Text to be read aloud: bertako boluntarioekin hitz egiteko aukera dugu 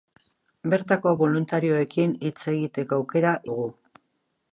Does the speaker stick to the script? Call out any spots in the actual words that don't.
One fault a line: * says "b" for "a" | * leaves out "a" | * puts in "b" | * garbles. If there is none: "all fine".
all fine